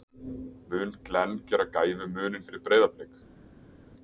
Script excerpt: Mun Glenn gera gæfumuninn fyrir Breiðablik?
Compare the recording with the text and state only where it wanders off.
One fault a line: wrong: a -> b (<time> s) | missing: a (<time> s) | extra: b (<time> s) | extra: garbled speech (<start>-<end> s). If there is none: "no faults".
no faults